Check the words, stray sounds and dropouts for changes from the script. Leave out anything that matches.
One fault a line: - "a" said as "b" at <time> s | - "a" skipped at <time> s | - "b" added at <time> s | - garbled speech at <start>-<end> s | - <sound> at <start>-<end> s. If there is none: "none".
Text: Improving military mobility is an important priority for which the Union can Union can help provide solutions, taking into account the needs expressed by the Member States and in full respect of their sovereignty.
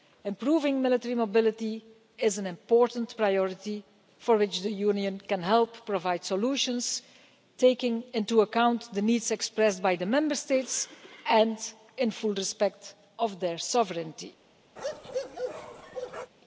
- "Union can" skipped at 5.4 s
- bark at 14.8-16.3 s